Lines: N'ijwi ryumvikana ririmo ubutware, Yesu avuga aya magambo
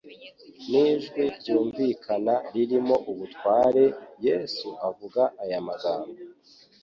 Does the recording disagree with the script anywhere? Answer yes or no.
no